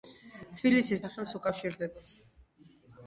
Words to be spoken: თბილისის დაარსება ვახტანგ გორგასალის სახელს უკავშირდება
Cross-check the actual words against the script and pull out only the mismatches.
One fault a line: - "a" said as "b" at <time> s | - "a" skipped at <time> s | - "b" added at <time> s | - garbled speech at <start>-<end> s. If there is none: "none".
- "დაარსება ვახტანგ გორგასალის" skipped at 1.0 s